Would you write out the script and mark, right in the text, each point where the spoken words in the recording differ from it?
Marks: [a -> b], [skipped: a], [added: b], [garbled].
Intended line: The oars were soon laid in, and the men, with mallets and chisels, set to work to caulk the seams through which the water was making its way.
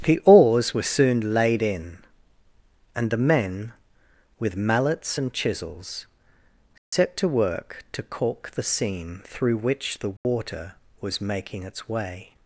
The oars were soon laid in, and the men, with mallets and chisels, set to work to caulk the [seams -> seam] through which the water was making its way.